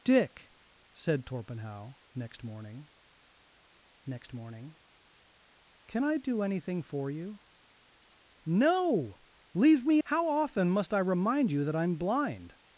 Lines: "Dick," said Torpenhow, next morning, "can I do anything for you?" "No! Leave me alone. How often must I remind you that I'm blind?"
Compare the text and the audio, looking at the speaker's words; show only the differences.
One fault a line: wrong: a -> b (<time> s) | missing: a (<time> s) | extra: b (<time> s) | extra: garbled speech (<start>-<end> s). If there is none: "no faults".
extra: next morning (4.1 s)
missing: alone (10.0 s)